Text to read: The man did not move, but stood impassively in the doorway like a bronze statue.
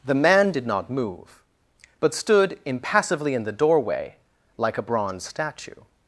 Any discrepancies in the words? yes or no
no